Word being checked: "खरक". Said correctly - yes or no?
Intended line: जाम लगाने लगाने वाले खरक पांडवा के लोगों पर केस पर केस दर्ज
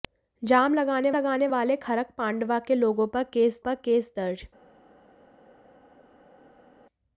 yes